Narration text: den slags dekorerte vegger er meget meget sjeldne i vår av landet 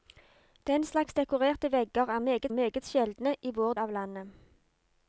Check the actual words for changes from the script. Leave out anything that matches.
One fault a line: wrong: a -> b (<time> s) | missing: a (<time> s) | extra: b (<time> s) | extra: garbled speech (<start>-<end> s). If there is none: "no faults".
no faults